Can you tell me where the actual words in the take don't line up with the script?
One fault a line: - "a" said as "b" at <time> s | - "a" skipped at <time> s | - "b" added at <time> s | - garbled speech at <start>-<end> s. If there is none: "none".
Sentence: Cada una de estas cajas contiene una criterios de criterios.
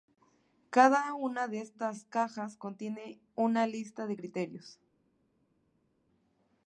- "criterios" said as "lista" at 3.7 s